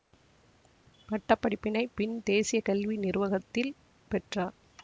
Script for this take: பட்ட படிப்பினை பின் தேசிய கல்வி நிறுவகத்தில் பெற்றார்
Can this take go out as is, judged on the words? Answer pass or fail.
pass